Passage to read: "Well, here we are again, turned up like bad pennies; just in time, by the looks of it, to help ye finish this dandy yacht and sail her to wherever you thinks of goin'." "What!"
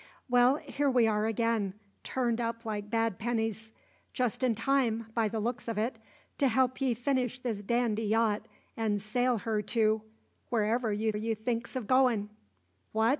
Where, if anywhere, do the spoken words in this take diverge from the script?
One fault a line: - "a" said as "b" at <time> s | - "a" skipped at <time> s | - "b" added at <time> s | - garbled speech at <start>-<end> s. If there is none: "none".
- "you" added at 11.1 s